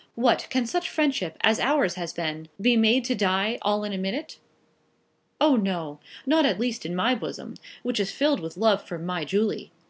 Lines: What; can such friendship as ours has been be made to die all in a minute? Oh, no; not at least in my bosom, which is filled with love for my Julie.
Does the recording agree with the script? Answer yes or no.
yes